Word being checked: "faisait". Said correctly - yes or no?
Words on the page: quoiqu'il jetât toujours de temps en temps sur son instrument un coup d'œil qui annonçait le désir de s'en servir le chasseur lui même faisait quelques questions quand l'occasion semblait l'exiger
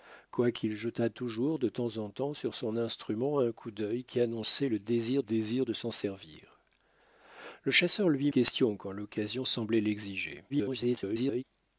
no